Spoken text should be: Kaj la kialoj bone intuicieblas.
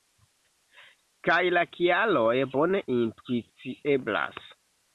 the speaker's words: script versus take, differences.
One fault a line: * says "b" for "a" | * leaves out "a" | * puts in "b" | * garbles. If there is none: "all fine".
all fine